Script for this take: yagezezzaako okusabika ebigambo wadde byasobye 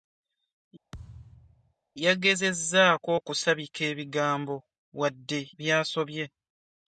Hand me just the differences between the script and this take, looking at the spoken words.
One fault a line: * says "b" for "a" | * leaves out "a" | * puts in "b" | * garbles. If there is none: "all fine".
all fine